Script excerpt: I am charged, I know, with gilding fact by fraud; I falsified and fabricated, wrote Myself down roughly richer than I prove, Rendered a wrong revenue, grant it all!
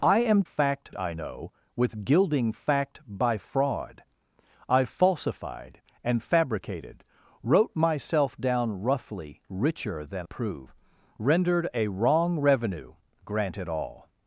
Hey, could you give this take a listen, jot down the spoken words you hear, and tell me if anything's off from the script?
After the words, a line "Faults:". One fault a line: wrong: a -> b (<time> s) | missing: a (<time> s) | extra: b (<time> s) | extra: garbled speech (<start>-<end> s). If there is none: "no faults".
I am fact, I know, with gilding fact by fraud; I falsified and fabricated, wrote Myself down roughly richer than prove, Rendered a wrong revenue, grant it all!
Faults:
wrong: charged -> fact (0.4 s)
missing: I (10.3 s)